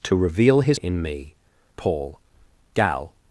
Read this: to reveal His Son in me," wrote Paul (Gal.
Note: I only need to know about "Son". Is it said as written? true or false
false